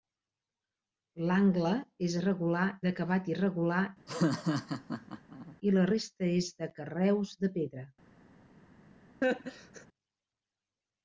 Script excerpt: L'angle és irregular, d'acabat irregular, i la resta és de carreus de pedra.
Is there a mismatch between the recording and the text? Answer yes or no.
no